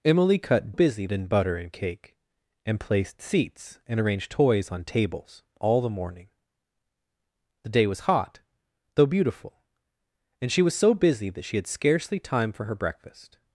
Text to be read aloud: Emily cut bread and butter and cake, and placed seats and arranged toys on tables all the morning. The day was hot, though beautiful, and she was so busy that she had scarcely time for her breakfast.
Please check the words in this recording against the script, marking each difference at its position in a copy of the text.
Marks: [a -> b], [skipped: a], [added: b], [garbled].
Emily cut [bread -> busy] and butter and cake, and placed seats and arranged toys on tables all the morning. The day was hot, though beautiful, and she was so busy that she had scarcely time for her breakfast.